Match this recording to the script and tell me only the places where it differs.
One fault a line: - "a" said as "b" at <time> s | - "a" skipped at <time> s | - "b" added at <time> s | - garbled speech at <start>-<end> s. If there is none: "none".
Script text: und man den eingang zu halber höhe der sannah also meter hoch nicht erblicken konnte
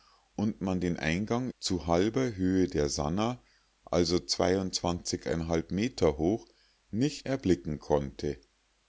none